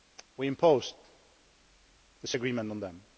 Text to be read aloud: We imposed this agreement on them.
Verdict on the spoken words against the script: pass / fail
pass